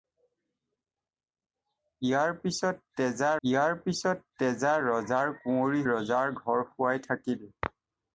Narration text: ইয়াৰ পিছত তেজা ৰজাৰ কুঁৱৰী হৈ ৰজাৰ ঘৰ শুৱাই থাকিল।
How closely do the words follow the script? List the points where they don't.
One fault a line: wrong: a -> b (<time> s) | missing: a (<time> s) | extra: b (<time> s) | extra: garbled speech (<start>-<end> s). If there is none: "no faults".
extra: ইয়াৰ পিছত তেজা (3.4 s)
missing: হৈ (5.8 s)